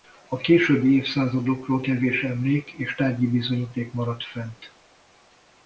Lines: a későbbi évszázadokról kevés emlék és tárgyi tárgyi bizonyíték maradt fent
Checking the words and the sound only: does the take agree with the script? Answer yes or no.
no